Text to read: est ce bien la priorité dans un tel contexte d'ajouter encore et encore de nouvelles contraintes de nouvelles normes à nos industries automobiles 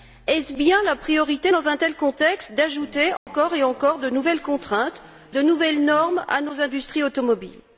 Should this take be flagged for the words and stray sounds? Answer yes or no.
yes